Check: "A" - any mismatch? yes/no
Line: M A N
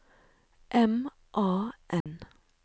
no